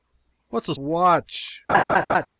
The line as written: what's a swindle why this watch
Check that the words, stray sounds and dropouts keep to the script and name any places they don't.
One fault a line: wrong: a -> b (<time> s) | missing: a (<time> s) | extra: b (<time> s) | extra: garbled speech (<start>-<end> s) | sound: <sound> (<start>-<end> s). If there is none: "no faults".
missing: swindle why this (0.8 s)
sound: laugh (1.7-2.3 s)